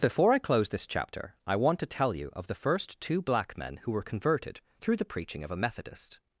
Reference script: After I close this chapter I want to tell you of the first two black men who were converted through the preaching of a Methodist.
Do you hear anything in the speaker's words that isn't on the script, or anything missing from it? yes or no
yes